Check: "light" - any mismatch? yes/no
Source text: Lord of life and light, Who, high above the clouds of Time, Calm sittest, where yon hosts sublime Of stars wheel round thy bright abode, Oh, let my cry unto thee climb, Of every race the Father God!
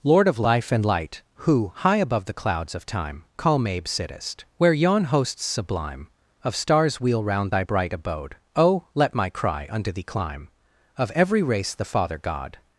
no